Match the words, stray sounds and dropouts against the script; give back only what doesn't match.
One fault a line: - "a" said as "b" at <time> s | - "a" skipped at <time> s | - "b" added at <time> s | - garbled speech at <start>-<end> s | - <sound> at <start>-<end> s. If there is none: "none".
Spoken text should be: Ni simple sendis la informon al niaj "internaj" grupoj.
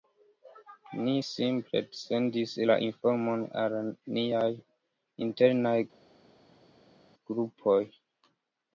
none